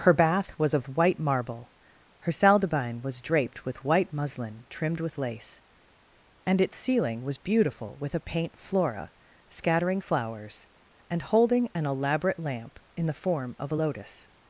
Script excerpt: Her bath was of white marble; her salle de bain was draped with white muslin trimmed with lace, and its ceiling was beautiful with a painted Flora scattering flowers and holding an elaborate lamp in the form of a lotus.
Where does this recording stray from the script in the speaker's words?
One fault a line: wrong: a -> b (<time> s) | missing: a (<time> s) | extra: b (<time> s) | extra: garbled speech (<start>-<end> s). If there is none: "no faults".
wrong: painted -> paint (8.2 s)